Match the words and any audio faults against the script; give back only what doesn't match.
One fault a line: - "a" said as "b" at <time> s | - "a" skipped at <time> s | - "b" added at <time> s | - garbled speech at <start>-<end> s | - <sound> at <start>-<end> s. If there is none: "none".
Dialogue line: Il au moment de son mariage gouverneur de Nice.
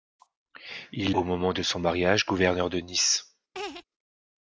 - laugh at 3.5-3.8 s